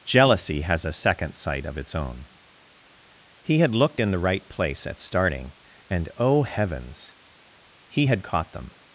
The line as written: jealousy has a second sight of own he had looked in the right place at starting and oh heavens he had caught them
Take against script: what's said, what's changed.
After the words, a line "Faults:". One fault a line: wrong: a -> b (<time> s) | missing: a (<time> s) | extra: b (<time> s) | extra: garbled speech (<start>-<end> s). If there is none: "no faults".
jealousy has a second sight of its own he had looked in the right place at starting and oh heavens he had caught them
Faults:
extra: its (1.8 s)